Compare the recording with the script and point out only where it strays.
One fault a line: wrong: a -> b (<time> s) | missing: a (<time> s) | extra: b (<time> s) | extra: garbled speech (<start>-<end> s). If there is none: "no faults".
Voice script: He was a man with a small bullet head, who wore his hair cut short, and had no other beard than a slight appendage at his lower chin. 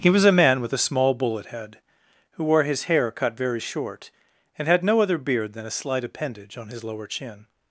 extra: very (3.4 s)
wrong: at -> on (6.6 s)